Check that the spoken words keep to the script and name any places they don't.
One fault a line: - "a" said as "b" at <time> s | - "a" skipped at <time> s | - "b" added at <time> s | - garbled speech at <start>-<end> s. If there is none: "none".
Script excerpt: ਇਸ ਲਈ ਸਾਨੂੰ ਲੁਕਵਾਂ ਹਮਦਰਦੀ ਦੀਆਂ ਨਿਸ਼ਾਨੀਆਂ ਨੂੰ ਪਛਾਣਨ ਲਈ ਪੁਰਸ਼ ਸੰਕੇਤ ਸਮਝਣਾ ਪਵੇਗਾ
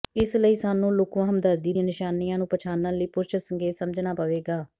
none